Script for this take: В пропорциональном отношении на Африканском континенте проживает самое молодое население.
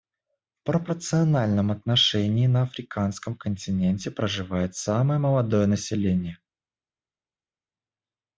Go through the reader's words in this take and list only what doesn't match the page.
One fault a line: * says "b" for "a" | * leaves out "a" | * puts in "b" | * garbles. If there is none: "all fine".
all fine